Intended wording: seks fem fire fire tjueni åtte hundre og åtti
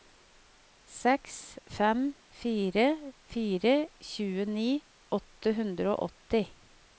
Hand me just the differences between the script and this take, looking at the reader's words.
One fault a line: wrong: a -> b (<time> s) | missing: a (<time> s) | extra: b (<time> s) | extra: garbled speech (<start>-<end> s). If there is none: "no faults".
no faults